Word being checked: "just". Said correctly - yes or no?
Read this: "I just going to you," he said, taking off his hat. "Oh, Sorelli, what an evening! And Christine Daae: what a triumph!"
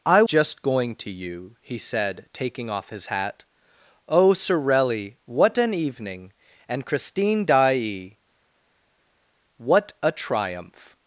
yes